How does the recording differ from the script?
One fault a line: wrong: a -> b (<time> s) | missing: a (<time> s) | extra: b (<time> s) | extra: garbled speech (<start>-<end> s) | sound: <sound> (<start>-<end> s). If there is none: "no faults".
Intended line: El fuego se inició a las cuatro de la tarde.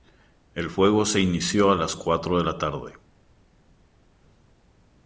no faults